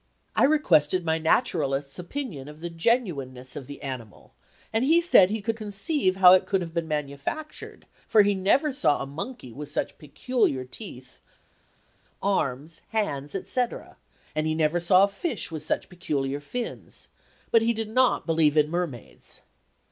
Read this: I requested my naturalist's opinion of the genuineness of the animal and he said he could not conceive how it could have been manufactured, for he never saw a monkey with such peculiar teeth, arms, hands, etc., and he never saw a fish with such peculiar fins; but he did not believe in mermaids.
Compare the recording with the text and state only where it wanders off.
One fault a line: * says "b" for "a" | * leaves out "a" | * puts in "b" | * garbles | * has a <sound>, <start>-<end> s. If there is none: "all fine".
* leaves out "not"